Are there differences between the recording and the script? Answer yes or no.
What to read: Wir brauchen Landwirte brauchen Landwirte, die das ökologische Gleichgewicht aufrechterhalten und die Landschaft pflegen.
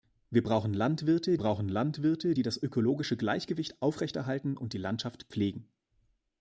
no